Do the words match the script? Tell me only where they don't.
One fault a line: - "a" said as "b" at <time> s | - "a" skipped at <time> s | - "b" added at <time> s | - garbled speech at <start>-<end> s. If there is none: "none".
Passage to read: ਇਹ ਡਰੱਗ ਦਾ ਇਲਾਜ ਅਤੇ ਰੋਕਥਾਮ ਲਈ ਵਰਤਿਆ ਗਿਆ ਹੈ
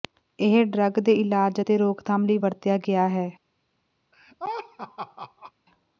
- "ਦਾ" said as "ਦੇ" at 1.0 s